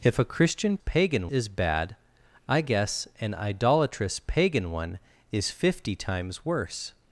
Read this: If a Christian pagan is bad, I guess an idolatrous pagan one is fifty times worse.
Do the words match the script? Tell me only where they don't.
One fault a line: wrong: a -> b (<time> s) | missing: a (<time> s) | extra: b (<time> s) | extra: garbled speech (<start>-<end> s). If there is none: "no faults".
no faults